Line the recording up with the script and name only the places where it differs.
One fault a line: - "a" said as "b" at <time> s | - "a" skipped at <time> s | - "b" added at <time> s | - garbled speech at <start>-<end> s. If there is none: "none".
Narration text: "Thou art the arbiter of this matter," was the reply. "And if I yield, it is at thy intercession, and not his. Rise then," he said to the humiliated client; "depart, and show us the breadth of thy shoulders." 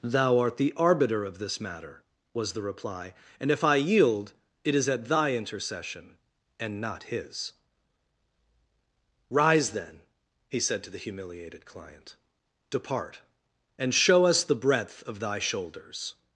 none